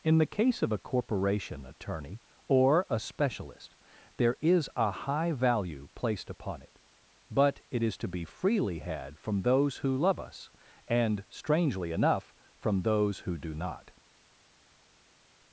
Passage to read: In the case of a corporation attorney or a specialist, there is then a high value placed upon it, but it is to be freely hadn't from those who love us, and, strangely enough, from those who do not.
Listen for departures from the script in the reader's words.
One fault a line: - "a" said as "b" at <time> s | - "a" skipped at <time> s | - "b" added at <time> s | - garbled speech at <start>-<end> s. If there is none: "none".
- "then" skipped at 4.7 s
- "hadn't" said as "had" at 8.8 s